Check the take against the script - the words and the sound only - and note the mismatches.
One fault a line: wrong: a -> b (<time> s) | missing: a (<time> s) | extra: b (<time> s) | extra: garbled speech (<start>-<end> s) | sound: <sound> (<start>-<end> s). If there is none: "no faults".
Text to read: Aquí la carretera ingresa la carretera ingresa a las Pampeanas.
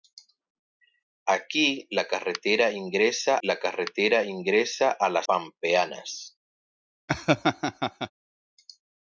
sound: laugh (7.1-8.1 s)